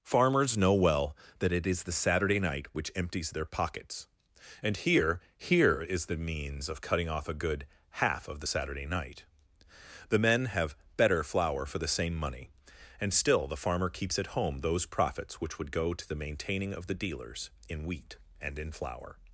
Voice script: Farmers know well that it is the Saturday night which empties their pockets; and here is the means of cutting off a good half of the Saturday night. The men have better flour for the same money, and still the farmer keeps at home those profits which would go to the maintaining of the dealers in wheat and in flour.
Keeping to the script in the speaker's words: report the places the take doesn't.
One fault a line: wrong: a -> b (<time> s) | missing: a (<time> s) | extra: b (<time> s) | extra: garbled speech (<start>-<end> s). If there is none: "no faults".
extra: here (5.4 s)